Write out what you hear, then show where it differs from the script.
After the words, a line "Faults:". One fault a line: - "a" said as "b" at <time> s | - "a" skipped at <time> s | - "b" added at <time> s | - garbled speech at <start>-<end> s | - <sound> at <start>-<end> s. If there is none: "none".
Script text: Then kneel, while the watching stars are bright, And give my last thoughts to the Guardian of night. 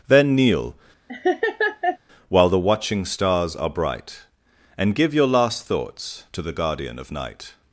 Then kneel, while the watching stars are bright, And give your last thoughts to the Guardian of night.
Faults:
- laugh at 1.1-2.0 s
- "my" said as "your" at 5.1 s